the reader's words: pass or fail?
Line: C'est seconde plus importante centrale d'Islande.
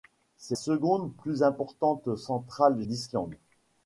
pass